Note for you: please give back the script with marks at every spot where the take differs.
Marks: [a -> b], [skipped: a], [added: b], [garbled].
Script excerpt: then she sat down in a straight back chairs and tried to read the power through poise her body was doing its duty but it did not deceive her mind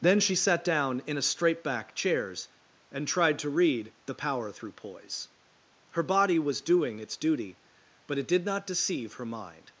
then she sat down in a straight back chairs and tried to read the power through poise her body was doing its duty but it did not deceive her mind